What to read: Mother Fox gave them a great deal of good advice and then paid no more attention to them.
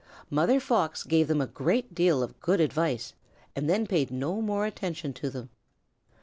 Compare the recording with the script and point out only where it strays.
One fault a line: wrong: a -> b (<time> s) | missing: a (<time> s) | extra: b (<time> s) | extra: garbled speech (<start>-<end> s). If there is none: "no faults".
no faults